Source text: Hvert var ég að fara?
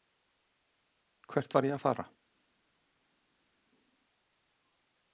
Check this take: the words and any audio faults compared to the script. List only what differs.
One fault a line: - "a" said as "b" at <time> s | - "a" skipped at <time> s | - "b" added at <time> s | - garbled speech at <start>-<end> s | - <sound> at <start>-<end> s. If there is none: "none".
none